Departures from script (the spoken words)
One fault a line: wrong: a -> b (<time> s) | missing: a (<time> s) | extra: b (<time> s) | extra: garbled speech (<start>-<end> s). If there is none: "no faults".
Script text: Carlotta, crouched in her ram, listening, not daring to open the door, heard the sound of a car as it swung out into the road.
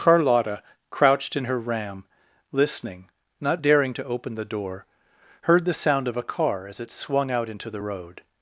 no faults